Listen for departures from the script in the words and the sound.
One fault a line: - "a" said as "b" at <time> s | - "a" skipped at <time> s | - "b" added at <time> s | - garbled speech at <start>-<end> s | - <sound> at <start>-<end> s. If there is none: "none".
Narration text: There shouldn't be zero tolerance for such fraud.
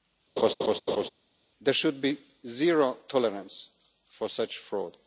- laugh at 0.4-1.1 s
- "shouldn't" said as "should" at 1.7 s